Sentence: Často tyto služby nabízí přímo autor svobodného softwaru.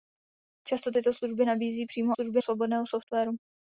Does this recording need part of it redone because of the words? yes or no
yes